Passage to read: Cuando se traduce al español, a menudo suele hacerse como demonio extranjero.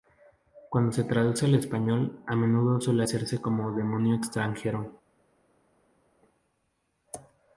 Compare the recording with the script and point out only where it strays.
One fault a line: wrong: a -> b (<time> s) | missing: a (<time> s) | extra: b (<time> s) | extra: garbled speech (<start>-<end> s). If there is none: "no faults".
no faults